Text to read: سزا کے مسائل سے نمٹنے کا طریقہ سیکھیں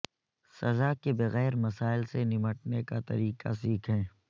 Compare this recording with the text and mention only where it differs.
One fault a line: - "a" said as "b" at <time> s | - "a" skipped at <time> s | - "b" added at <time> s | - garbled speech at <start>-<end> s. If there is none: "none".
- "بغیر" added at 1.1 s